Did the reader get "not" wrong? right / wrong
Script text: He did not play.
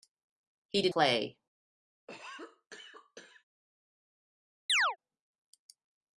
wrong